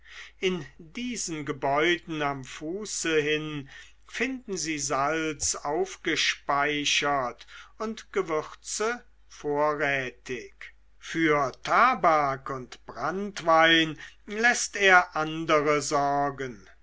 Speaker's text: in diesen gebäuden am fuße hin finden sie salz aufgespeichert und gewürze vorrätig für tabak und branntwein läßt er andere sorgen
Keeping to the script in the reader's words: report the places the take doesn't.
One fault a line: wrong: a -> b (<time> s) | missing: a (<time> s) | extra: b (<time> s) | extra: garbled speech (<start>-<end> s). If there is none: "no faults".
no faults